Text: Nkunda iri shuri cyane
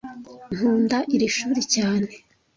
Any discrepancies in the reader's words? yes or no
no